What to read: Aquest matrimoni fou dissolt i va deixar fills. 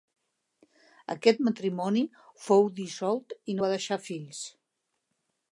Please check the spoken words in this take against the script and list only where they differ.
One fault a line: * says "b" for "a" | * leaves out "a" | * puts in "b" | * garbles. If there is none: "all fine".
all fine